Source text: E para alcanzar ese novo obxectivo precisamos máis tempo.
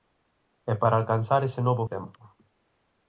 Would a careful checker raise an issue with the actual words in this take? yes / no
yes